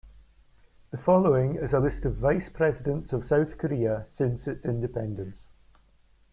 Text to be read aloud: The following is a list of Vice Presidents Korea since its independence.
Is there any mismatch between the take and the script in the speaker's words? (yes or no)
yes